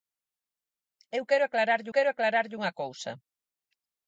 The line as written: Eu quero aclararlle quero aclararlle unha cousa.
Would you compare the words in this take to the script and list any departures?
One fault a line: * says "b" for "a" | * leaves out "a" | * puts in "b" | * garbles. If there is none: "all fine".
all fine